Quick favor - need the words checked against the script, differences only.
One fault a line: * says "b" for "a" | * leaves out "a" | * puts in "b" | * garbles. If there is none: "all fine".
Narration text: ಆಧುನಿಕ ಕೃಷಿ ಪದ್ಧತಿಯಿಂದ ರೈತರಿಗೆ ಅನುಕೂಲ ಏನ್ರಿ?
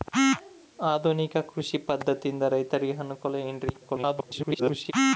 * garbles